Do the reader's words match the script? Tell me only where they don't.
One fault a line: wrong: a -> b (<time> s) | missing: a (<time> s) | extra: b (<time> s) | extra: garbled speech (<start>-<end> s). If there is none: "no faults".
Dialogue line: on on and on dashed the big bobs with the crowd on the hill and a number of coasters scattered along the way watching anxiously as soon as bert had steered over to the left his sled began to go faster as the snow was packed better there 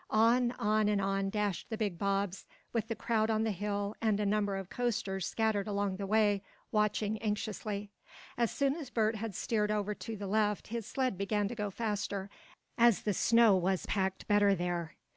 no faults